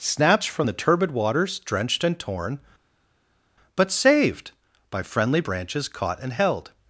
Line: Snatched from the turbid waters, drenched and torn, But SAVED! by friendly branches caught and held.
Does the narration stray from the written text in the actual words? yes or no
no